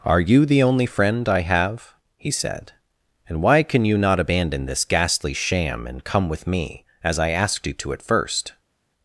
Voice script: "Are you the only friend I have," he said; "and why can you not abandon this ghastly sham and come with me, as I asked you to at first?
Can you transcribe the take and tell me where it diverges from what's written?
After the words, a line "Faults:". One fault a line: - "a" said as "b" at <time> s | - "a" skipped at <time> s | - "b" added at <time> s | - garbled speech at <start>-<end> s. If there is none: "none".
"Are you the only friend I have," he said; "and why can you not abandon this ghastly sham and come with me, as I asked you to at first?
Faults:
none